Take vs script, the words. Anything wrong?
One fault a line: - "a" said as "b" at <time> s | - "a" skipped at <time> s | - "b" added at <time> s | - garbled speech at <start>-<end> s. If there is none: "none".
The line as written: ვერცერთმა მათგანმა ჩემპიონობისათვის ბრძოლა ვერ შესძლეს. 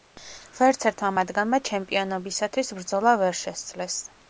none